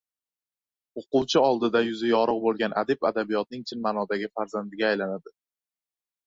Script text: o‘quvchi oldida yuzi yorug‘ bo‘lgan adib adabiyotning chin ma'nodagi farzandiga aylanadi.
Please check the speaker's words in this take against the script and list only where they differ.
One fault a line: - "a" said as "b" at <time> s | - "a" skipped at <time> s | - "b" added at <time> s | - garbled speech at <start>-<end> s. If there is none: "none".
none